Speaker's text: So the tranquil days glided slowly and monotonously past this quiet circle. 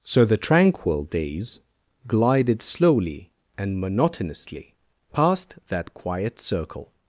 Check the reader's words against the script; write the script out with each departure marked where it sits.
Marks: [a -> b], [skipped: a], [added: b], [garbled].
So the tranquil days glided slowly and monotonously past [this -> that] quiet circle.